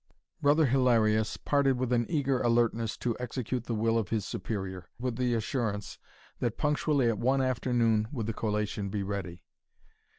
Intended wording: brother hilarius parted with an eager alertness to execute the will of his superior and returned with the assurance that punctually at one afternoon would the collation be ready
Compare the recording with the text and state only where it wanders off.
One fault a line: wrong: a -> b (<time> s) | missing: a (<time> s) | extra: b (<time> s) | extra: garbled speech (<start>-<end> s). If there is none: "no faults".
missing: and returned (4.9 s)